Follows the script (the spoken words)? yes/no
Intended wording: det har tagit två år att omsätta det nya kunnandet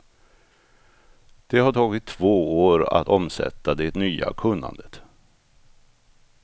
yes